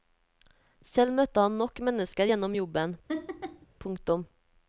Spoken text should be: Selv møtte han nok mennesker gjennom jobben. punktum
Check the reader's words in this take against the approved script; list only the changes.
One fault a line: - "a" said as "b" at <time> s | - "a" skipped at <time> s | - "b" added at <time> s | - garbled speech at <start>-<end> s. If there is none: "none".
none